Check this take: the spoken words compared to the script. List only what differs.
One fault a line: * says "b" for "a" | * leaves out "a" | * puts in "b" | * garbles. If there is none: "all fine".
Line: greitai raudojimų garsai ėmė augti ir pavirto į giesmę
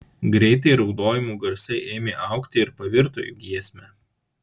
all fine